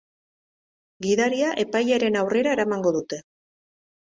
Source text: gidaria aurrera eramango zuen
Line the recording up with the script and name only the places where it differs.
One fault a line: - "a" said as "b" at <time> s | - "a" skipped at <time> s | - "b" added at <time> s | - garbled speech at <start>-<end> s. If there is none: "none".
- "epailearen" added at 1.6 s
- "zuen" said as "dute" at 3.0 s